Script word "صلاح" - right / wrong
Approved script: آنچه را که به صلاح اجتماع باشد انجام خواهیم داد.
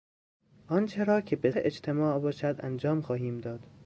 wrong